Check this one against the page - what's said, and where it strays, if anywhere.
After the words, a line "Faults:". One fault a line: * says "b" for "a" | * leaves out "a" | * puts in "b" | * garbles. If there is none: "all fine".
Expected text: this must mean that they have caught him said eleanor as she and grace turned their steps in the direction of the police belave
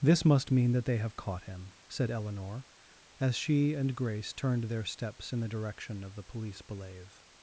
this must mean that they have caught him said eleanor as she and grace turned their steps in the direction of the police belave
Faults:
all fine